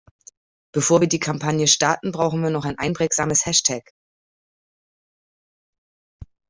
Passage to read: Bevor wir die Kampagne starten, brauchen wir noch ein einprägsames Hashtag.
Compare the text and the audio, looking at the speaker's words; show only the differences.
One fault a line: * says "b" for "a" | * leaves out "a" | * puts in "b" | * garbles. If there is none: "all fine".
all fine